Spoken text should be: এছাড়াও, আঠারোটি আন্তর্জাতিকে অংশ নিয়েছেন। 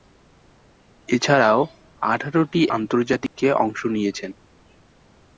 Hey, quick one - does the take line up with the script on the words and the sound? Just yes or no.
no